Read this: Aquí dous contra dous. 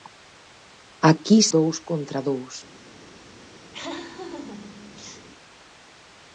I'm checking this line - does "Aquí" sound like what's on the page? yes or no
yes